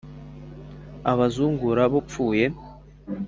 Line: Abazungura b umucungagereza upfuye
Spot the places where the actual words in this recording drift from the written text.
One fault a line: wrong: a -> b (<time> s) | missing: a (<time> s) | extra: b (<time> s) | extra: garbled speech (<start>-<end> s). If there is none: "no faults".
missing: umucungagereza (1.9 s)